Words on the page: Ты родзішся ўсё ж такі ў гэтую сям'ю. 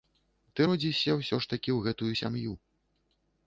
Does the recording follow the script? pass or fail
pass